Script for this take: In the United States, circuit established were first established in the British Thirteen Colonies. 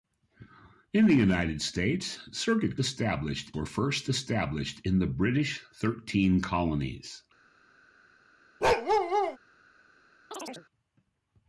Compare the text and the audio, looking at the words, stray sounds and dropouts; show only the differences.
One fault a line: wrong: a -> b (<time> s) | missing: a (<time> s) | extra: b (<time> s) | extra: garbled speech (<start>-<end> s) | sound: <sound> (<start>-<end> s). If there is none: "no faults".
sound: bark (8.6-9.4 s)
sound: chirp (10.3-10.7 s)